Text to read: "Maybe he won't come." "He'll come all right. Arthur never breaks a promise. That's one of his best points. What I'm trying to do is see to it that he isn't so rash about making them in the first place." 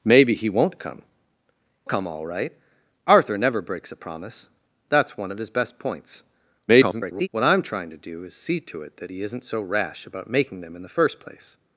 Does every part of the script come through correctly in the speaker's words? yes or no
no